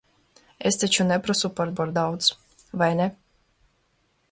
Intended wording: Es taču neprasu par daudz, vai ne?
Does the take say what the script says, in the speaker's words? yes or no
no